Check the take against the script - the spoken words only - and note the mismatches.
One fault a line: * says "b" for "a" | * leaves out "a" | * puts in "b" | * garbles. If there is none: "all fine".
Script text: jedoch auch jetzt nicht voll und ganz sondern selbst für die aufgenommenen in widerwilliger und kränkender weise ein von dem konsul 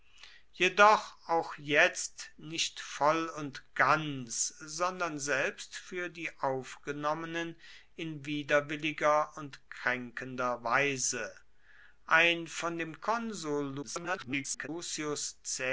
* garbles